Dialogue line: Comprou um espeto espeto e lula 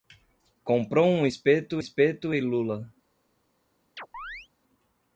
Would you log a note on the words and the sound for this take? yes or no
yes